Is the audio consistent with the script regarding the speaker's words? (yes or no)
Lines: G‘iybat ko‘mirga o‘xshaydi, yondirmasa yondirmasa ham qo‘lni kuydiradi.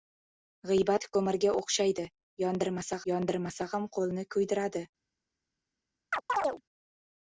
yes